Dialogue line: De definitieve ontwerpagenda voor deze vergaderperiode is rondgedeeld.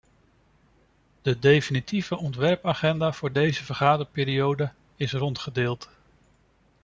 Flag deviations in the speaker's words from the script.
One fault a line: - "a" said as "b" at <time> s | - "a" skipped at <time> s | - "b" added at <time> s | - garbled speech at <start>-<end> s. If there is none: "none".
none